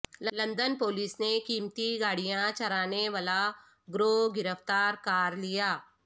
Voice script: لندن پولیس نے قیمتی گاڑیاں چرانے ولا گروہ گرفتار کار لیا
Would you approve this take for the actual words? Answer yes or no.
yes